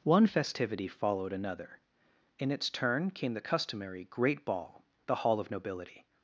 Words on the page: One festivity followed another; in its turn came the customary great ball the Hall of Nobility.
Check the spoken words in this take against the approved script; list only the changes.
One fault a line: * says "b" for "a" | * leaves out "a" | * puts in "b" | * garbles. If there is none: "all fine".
all fine